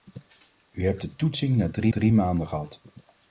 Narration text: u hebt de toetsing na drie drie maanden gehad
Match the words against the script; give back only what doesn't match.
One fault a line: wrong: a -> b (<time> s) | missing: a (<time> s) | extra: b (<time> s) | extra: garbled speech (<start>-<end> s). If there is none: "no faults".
no faults